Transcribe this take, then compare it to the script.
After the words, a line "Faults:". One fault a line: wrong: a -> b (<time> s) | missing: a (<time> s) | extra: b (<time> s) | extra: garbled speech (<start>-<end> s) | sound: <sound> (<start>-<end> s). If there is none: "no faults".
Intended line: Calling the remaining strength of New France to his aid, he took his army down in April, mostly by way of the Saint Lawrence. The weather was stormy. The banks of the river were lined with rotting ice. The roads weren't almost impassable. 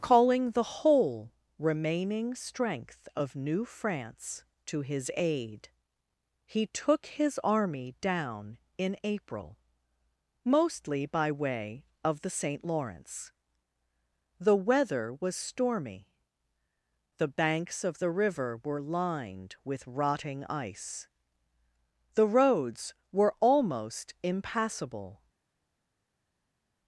Calling the whole remaining strength of New France to his aid, he took his army down in April, mostly by way of the Saint Lawrence. The weather was stormy. The banks of the river were lined with rotting ice. The roads were almost impassable.
Faults:
extra: whole (0.8 s)
wrong: weren't -> were (23.1 s)